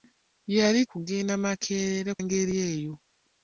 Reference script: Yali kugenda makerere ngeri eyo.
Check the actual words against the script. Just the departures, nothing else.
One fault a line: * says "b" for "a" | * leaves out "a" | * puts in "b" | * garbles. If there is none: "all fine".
all fine